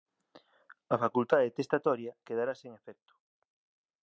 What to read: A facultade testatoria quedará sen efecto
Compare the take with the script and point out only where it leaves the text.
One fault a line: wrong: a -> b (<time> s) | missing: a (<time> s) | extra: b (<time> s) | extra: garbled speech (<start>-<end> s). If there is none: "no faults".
no faults